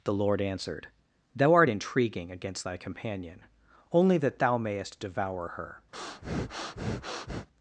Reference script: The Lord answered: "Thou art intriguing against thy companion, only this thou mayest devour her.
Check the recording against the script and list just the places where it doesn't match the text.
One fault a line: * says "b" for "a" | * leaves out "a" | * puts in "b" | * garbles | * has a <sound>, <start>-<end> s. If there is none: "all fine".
* says "that" for "this"
* has a breath, 5.9-7.5 s